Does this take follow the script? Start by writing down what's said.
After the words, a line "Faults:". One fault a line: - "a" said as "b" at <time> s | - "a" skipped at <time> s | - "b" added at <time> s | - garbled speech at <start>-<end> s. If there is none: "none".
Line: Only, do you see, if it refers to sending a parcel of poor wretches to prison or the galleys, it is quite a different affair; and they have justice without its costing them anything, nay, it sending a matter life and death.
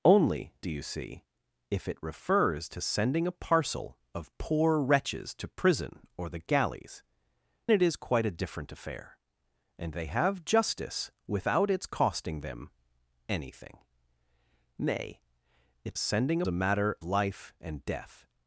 Only, do you see, if it refers to sending a parcel of poor wretches to prison or the galleys, it is quite a different affair; and they have justice without its costing them anything, nay, it sending a matter life and death.
Faults:
none